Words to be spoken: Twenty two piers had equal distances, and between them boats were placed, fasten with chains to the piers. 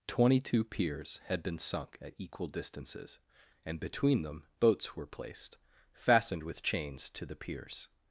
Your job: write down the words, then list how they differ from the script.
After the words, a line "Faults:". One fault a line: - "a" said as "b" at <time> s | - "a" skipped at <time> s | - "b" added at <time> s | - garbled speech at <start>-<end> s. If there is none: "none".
Twenty two piers had been sunk at equal distances, and between them boats were placed, fastened with chains to the piers.
Faults:
- "been sunk at" added at 1.4 s
- "fasten" said as "fastened" at 5.9 s